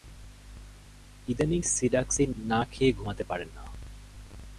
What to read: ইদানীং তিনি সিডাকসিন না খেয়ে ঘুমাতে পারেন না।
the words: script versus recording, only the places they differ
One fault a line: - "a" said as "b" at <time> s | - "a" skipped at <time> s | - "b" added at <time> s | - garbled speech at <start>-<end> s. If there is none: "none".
- "তিনি" skipped at 1.6 s